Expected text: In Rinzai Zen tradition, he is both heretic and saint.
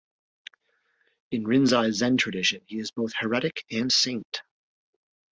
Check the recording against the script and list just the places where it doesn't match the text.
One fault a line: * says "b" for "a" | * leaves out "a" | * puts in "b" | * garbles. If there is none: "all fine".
all fine